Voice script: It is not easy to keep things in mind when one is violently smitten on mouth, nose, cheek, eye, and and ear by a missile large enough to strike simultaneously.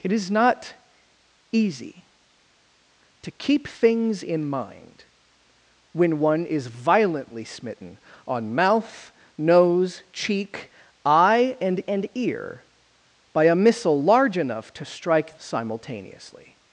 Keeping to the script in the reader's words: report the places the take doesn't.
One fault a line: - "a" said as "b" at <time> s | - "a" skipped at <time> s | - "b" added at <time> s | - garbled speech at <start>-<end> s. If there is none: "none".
none